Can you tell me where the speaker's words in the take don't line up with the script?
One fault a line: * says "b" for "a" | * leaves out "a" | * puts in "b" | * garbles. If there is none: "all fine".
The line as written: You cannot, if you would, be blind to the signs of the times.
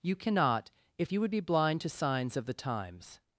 * leaves out "the"